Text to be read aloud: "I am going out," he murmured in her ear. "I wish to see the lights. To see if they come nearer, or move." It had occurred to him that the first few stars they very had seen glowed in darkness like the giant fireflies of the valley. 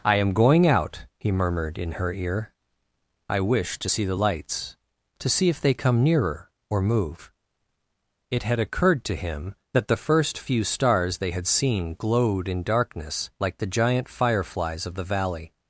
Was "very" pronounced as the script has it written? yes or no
no